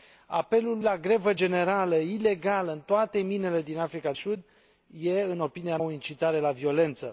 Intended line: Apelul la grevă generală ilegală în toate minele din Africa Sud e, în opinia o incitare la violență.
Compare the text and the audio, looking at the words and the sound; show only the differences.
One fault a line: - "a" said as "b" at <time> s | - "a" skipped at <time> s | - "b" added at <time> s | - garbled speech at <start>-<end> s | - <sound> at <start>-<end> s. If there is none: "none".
none